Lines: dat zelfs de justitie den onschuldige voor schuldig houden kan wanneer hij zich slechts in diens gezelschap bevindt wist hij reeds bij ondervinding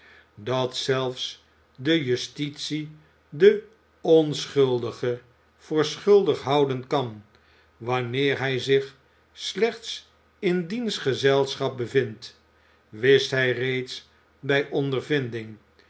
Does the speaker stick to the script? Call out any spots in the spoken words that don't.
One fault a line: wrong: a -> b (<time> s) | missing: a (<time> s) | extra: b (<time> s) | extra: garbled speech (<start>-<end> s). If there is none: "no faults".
no faults